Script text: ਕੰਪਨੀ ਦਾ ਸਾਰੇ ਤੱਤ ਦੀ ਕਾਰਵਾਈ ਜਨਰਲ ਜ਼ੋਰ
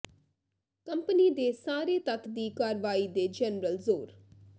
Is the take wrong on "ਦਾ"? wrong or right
wrong